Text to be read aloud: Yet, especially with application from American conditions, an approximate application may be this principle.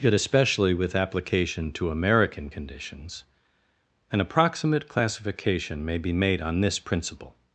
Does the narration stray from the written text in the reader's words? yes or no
yes